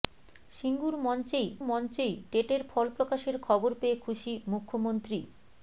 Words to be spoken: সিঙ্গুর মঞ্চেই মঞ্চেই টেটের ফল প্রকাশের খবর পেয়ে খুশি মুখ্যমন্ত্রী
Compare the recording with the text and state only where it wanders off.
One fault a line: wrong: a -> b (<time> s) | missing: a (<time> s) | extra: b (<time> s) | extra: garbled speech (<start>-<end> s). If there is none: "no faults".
no faults